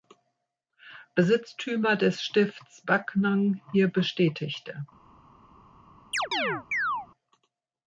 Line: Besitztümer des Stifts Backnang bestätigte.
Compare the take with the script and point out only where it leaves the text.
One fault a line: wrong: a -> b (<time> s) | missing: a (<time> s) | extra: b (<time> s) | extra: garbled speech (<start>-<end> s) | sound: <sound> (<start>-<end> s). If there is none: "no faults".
extra: hier (3.7 s)
sound: chirp (6.1-7.1 s)